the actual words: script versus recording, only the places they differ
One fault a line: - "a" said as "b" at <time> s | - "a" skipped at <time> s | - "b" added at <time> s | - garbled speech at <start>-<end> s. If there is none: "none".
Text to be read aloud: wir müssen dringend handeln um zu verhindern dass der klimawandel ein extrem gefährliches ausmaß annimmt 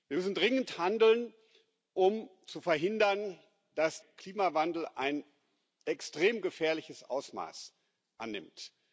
- "der" skipped at 4.0 s